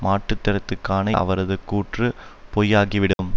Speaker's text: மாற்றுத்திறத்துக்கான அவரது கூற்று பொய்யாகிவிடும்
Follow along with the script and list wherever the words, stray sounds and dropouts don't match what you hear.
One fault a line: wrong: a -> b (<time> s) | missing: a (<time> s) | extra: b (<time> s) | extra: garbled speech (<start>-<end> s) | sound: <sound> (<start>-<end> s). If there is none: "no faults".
sound: dropout (3.1-3.2 s)